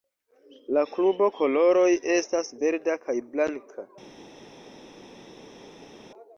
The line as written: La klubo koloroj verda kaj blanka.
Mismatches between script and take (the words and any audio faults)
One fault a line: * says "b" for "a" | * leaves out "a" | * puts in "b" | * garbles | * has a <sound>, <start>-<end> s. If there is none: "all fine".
* puts in "estas"